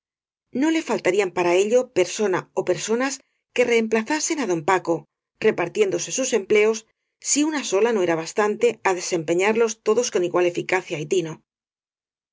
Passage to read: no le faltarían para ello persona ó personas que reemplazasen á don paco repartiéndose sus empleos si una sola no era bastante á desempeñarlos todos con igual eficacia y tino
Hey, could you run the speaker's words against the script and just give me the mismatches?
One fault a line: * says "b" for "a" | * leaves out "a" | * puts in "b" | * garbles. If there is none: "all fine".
all fine